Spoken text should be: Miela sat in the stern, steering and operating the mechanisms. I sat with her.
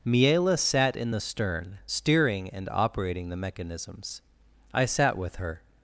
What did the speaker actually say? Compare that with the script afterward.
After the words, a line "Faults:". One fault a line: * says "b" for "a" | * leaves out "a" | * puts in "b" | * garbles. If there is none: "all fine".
Miela sat in the stern, steering and operating the mechanisms. I sat with her.
Faults:
all fine